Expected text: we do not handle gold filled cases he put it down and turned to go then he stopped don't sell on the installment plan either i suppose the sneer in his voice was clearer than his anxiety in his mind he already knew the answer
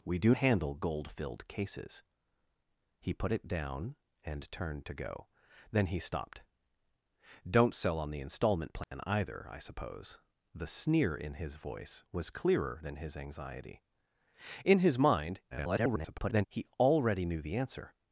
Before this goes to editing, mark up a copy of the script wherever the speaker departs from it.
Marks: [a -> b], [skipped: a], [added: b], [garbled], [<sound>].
we do [skipped: not] handle gold filled cases he put it down and turned to go then he stopped don't sell on the installment plan [dropout] either i suppose the sneer in his voice was clearer than his anxiety in his mind [garbled] he already knew the answer